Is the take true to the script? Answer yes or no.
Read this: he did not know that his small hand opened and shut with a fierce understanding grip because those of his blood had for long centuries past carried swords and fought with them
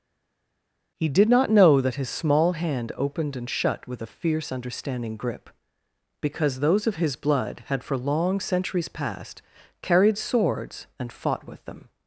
yes